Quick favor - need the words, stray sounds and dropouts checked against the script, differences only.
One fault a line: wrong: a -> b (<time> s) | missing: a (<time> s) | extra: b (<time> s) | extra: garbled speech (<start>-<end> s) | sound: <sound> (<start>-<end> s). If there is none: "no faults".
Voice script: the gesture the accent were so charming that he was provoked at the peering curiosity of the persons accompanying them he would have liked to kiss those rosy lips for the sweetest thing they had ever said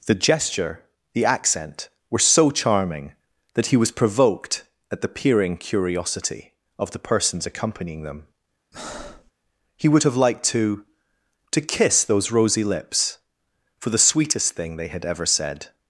sound: breath (8.7-9.3 s)
extra: to (11.5 s)